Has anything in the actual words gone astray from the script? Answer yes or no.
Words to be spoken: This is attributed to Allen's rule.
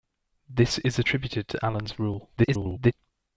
yes